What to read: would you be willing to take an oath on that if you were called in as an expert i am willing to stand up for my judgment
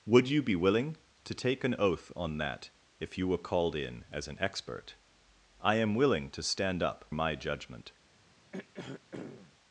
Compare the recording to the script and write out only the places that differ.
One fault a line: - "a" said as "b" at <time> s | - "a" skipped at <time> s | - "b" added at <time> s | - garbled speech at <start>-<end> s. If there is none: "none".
- "for" skipped at 7.1 s